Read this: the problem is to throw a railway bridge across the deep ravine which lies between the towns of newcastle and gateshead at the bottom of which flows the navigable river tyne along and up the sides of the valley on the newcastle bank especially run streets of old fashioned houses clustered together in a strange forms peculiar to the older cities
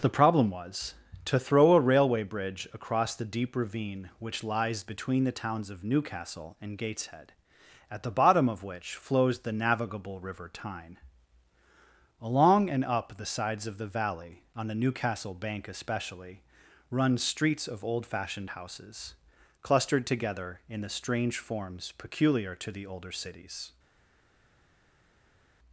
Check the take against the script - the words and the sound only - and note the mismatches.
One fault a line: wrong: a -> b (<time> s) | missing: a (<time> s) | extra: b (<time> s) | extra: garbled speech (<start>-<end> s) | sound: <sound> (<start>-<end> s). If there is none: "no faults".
wrong: is -> was (0.5 s)
wrong: a -> the (20.8 s)